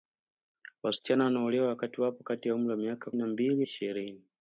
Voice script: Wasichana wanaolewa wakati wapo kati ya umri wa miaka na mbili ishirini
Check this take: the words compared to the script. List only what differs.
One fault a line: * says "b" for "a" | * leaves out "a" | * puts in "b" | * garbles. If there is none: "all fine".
all fine